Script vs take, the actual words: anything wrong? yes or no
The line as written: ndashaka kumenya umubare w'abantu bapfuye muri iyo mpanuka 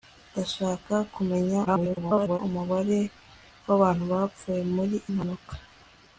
yes